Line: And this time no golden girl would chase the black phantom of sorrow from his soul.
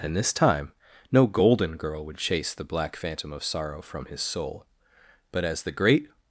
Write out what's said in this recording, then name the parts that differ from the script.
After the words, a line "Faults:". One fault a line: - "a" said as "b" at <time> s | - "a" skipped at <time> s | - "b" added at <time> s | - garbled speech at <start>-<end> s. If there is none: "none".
And this time no golden girl would chase the black phantom of sorrow from his soul. But as the great
Faults:
- "But as the great" added at 5.3 s